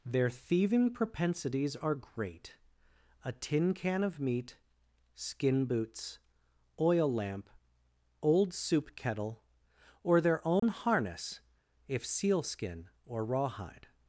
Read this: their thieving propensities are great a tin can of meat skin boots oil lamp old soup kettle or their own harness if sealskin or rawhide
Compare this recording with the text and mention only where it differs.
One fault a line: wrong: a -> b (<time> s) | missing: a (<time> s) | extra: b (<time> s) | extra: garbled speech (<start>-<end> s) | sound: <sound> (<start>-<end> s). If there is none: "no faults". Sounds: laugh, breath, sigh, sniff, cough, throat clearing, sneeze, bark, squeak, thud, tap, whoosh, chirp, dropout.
sound: dropout (10.6-10.6 s)